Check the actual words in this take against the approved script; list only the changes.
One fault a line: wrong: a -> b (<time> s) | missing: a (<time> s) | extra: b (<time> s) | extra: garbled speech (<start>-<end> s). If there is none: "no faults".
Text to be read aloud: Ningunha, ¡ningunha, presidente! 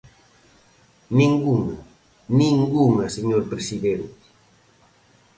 extra: señor (3.1 s)